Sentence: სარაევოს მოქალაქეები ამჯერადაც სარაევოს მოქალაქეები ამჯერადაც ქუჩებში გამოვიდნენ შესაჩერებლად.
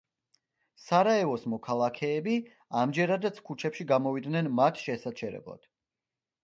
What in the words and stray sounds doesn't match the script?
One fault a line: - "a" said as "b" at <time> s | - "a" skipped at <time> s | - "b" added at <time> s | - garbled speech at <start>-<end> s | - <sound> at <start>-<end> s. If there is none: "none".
- "სარაევოს მოქალაქეები ამჯერადაც" skipped at 3.4 s
- "მათ" added at 4.6 s